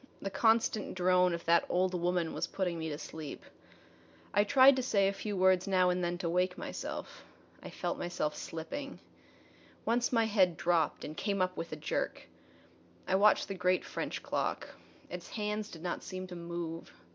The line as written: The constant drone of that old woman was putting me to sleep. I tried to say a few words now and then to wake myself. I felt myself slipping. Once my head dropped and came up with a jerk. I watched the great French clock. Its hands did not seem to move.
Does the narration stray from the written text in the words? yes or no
no